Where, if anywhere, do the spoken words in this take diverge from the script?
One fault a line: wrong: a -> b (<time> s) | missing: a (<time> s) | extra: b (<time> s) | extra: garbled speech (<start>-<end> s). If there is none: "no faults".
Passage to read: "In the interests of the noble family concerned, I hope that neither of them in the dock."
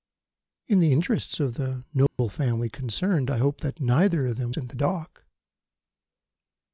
no faults